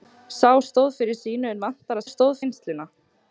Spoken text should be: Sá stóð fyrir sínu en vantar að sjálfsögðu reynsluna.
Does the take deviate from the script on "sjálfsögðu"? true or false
true